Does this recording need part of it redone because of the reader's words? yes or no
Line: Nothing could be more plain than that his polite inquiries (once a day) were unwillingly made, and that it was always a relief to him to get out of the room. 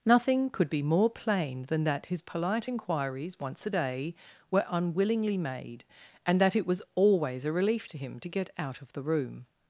no